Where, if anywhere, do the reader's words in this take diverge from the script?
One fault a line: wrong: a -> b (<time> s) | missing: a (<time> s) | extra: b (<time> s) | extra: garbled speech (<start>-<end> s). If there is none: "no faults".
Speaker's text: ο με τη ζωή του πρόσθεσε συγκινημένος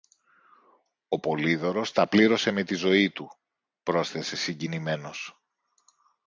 extra: πολύδωρος τα πλήρωσε (1.2 s)